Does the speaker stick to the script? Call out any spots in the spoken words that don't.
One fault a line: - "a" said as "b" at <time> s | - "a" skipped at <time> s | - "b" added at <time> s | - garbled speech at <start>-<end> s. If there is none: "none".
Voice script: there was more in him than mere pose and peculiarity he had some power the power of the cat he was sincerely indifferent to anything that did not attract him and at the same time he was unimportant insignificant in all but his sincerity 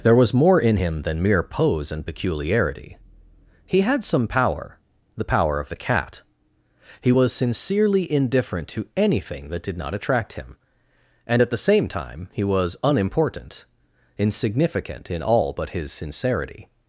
none